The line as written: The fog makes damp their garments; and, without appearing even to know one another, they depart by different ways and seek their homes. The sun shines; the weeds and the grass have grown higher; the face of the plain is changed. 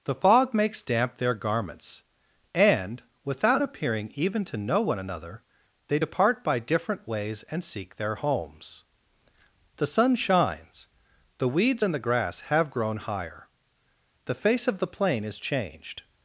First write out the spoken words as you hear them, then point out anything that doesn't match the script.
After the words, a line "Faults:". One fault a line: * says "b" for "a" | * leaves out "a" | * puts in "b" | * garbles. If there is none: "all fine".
The fog makes damp their garments; and, without appearing even to know one another, they depart by different ways and seek their homes. The sun shines; the weeds and the grass have grown higher; the face of the plain is changed.
Faults:
all fine